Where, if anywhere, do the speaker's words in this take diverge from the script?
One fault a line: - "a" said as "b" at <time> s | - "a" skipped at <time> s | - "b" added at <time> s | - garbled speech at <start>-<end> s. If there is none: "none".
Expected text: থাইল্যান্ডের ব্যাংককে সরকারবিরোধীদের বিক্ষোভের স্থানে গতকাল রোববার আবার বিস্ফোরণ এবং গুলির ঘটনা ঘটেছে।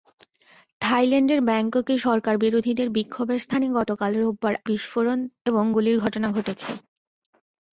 - "আবার" skipped at 4.5 s